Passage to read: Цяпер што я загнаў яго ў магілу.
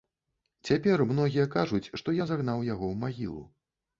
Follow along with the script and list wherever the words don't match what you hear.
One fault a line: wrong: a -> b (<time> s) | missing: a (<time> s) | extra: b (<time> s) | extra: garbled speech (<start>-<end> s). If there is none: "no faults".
extra: многія кажуць (1.1 s)